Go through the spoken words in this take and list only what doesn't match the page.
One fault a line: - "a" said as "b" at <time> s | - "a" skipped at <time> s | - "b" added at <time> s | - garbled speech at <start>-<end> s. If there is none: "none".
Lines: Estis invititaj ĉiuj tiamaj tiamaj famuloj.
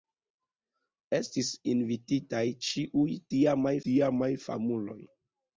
none